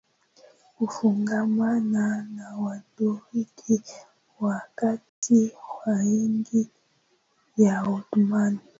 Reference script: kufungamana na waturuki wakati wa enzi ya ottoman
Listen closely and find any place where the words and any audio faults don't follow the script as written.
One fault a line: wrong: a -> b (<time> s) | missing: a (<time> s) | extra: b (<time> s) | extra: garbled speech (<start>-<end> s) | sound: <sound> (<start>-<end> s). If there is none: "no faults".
sound: dropout (5.1-5.2 s)